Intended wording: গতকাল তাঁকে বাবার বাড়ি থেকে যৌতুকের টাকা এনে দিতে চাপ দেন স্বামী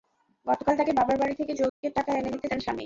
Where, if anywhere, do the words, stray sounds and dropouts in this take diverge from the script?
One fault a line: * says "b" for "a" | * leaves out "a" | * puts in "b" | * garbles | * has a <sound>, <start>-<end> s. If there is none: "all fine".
* has a dropout, 1.7-1.8 s
* leaves out "চাপ"